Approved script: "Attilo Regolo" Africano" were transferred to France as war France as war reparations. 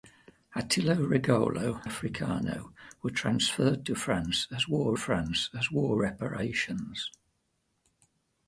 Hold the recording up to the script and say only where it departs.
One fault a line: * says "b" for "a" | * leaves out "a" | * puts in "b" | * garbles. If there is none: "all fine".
all fine